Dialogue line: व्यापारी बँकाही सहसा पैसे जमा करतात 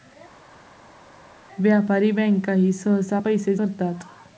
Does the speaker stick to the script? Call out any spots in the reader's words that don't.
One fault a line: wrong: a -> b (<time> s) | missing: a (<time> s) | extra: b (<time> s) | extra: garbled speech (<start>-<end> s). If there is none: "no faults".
missing: जमा (3.6 s)